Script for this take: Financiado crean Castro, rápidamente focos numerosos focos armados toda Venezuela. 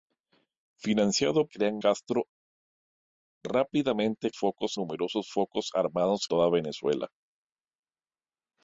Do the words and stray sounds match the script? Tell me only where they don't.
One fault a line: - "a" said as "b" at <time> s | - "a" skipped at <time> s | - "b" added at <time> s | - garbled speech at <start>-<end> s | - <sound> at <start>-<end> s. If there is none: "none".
none